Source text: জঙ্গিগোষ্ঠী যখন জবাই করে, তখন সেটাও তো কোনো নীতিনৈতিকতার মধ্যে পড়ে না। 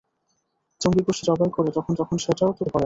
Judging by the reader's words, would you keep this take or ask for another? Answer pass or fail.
fail